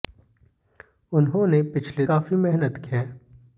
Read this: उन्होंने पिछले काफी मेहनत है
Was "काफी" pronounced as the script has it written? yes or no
yes